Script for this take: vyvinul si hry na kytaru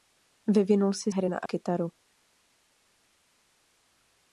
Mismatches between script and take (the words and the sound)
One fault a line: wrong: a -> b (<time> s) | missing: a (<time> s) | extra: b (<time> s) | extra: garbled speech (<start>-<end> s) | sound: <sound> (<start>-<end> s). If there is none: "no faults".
no faults